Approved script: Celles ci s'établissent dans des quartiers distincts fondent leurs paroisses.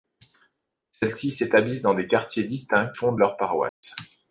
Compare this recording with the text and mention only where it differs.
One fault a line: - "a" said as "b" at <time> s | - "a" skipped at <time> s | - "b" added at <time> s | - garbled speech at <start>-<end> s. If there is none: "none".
none